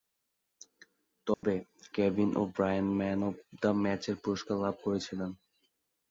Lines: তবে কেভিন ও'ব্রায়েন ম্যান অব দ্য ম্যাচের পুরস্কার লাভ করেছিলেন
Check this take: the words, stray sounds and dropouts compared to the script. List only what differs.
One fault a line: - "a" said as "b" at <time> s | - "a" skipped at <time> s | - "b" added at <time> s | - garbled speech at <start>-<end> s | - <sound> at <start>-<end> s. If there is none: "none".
- dropout at 1.3-1.4 s